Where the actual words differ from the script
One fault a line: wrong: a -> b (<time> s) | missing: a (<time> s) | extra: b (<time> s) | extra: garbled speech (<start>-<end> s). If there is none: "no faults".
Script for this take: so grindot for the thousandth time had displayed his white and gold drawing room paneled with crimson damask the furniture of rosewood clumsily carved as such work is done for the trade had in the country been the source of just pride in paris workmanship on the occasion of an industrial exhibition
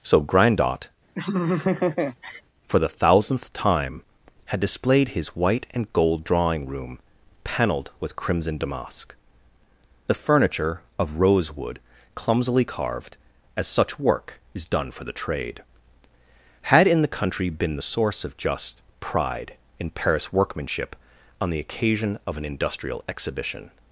no faults